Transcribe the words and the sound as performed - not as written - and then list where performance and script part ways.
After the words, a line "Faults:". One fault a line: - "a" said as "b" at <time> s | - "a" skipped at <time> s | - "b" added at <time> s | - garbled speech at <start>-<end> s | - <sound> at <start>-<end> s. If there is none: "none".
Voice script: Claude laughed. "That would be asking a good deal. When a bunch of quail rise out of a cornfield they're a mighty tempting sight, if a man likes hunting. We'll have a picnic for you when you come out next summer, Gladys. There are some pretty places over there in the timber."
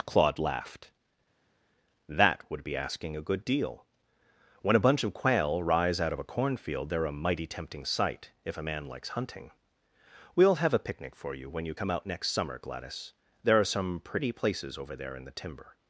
Claude laughed. "That would be asking a good deal. When a bunch of quail rise out of a cornfield they're a mighty tempting sight, if a man likes hunting. We'll have a picnic for you when you come out next summer, Gladys. There are some pretty places over there in the timber."
Faults:
none